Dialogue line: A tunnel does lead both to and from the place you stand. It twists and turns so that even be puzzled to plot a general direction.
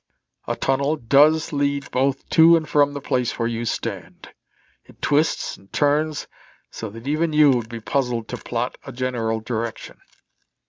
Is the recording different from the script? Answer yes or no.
yes